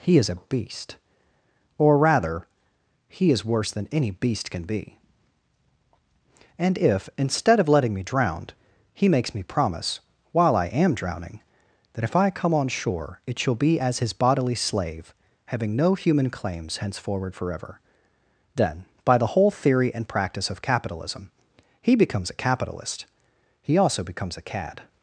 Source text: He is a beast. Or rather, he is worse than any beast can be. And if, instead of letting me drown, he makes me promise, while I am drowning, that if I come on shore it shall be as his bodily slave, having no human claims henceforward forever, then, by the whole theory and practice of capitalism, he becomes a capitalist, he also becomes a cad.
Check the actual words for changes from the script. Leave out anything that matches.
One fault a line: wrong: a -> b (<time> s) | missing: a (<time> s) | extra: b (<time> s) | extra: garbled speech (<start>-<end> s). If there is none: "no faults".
no faults